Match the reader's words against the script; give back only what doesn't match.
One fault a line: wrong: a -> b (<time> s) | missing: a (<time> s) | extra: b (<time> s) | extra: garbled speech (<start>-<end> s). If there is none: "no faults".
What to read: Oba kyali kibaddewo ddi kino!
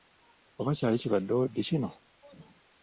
no faults